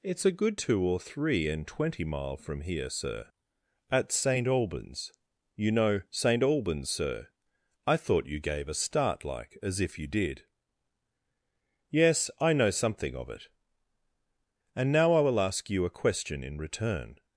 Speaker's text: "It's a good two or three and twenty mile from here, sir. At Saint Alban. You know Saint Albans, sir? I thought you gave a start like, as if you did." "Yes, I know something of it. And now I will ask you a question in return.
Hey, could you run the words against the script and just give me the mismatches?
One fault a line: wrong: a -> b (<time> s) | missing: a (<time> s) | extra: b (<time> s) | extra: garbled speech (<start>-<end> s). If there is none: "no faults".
wrong: Alban -> Albans (4.5 s)